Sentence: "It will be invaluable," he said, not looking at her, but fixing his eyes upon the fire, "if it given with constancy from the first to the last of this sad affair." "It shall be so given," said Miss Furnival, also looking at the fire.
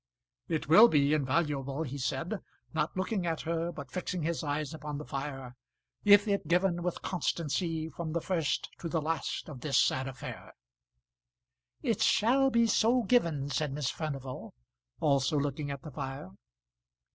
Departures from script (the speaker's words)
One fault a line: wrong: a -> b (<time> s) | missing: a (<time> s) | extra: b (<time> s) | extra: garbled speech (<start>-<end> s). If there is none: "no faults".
no faults